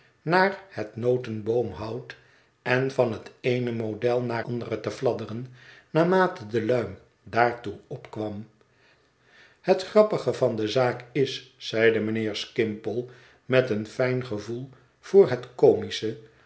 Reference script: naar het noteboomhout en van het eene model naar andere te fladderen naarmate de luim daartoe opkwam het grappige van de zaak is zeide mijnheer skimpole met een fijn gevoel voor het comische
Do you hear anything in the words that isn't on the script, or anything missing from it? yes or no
no